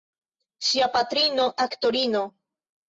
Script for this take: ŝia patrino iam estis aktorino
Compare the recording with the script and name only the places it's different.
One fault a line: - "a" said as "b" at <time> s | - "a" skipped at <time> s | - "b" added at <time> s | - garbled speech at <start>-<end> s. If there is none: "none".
- "iam estis" skipped at 1.4 s